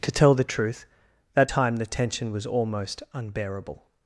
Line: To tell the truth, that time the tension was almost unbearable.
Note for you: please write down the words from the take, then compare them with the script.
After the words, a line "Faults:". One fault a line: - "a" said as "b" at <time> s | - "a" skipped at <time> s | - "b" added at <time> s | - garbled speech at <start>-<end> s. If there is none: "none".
To tell the truth, that time the tension was almost unbearable.
Faults:
none